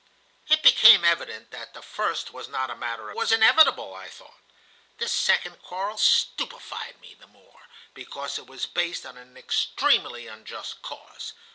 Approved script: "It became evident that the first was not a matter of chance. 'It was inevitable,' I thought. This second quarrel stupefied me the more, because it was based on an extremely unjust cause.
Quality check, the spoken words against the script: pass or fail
fail